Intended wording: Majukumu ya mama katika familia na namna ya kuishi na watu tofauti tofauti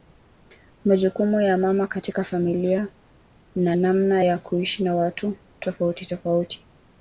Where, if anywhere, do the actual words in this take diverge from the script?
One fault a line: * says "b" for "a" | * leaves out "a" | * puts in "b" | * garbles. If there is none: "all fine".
all fine